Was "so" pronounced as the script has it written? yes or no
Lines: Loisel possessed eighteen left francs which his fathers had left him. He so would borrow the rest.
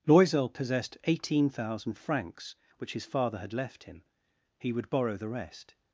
no